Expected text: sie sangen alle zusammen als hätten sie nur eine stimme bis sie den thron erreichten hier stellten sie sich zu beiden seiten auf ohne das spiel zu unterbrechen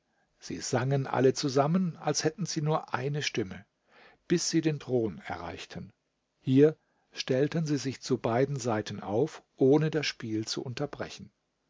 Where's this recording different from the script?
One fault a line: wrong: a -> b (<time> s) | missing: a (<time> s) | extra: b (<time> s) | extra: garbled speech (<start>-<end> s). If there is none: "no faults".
no faults